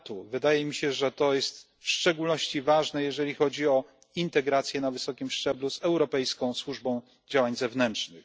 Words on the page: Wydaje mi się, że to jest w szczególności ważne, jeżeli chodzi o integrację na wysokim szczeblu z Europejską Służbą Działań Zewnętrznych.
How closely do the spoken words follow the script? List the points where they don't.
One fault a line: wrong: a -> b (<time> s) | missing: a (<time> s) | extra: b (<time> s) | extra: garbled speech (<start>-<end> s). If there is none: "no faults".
no faults